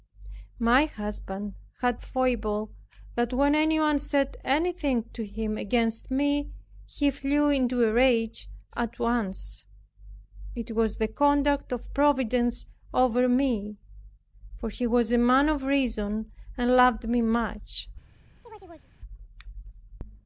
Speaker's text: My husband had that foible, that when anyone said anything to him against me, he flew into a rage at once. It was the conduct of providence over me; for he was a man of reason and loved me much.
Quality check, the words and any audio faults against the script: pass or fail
fail